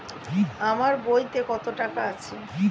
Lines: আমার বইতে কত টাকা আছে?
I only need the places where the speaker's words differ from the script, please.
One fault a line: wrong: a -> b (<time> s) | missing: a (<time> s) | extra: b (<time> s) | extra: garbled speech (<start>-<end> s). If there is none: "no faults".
no faults